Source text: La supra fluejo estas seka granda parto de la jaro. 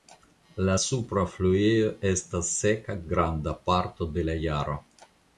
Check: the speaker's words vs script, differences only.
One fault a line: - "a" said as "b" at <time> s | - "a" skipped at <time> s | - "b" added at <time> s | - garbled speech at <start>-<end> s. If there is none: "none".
none